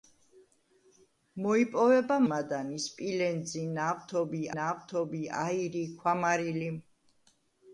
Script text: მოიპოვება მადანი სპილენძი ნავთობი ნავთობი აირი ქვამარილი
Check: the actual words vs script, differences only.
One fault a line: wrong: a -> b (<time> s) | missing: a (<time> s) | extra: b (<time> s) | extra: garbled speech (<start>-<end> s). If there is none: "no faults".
no faults